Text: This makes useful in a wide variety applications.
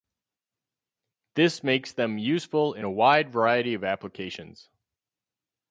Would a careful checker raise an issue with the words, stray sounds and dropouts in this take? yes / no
yes